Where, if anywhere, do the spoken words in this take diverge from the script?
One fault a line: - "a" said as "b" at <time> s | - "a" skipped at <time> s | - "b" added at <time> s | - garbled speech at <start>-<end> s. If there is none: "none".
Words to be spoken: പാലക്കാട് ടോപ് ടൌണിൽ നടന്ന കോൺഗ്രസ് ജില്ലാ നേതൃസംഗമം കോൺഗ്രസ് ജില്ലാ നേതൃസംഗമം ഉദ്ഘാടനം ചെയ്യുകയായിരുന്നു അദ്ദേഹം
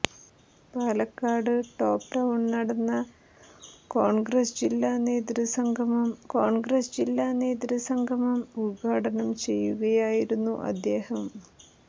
none